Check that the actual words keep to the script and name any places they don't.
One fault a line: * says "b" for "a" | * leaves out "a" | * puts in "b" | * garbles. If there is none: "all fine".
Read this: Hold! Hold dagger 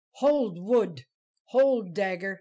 * puts in "wood"